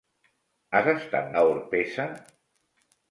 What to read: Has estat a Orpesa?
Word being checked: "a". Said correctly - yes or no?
yes